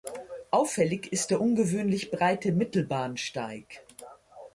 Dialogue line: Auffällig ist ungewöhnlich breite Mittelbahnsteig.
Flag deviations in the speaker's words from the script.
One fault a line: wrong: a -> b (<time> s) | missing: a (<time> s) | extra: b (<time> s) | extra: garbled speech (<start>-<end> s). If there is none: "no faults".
extra: der (1.3 s)